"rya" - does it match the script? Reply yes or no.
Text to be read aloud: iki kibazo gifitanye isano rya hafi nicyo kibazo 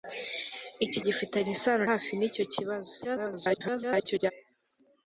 no